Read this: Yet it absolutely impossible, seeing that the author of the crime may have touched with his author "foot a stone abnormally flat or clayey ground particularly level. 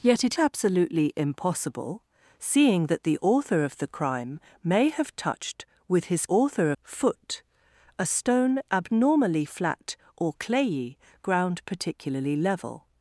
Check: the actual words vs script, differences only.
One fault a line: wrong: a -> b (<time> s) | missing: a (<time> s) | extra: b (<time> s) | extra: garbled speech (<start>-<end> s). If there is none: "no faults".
no faults